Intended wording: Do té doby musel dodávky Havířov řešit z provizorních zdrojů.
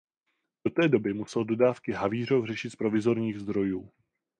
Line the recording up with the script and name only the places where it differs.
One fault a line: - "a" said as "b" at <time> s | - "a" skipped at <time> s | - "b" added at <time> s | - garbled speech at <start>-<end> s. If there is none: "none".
none